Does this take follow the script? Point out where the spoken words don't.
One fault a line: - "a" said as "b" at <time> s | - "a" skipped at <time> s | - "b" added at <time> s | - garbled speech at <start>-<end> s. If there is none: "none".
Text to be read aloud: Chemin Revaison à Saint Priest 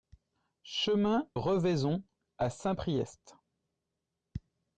none